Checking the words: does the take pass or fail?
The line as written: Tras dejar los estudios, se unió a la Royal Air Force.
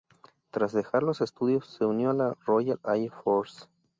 pass